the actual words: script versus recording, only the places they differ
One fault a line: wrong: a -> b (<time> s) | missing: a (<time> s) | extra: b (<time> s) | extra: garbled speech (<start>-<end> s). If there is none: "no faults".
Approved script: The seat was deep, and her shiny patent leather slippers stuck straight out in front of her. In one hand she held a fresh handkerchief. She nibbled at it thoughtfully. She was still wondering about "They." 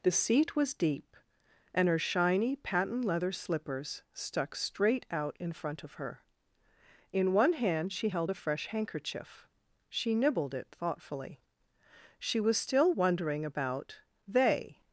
missing: at (10.5 s)